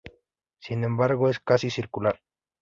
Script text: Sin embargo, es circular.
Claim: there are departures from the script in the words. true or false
true